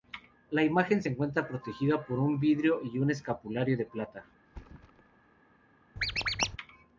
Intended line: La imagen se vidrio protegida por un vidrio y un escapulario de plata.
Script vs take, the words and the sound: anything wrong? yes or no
yes